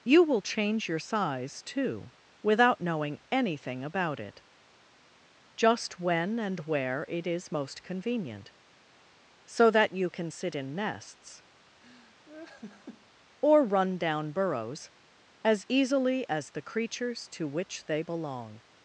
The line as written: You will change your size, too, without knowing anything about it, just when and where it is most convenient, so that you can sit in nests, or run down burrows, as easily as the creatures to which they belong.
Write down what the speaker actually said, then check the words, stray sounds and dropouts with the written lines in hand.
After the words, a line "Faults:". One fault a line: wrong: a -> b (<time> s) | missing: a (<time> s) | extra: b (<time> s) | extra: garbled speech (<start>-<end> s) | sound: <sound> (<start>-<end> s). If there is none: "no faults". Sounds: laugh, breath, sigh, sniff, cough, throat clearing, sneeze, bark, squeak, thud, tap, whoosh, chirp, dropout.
You will change your size, too, without knowing anything about it, just when and where it is most convenient, so that you can sit in nests, or run down burrows, as easily as the creatures to which they belong.
Faults:
sound: laugh (11.8-13.1 s)